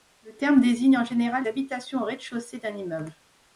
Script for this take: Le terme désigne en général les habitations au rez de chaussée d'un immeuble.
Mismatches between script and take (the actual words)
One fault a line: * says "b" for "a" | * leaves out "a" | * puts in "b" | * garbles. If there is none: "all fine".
* leaves out "les"